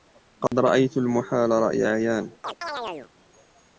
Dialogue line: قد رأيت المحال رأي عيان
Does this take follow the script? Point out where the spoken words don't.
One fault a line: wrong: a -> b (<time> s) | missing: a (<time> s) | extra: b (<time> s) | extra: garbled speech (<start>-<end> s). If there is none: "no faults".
no faults